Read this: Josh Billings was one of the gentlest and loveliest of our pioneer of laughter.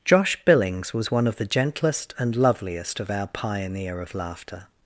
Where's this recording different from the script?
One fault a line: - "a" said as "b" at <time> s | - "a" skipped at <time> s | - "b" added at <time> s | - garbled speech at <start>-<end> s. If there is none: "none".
none